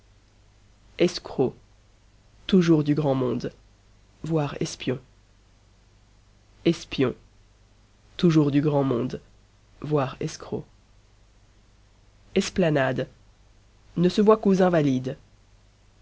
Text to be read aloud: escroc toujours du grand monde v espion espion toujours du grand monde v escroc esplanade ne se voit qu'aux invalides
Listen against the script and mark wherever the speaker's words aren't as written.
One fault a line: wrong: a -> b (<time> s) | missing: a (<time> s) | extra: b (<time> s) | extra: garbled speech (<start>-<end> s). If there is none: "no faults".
no faults